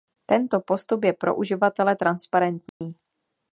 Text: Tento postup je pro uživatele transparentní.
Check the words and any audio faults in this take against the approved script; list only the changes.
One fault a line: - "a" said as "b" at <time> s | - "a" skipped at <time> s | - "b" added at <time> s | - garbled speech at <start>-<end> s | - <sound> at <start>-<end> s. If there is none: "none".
- dropout at 2.7-2.8 s